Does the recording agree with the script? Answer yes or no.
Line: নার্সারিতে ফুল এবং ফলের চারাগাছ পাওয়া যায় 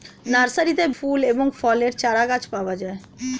yes